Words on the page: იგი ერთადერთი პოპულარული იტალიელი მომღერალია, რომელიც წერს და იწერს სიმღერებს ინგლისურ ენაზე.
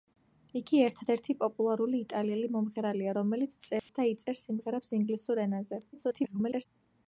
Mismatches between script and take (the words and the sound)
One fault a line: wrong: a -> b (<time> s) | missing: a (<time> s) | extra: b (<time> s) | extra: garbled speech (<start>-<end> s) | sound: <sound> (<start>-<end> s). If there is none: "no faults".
sound: dropout (3.8-3.9 s)
extra: garbled speech (5.9-6.7 s)